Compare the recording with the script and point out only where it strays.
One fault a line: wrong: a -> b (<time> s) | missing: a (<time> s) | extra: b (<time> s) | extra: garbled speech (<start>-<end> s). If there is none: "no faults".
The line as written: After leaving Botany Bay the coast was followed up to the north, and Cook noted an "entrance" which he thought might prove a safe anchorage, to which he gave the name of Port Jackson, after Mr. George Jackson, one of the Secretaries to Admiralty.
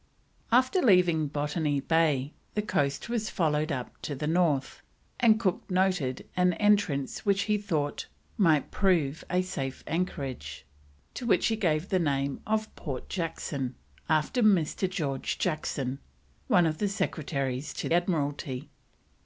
no faults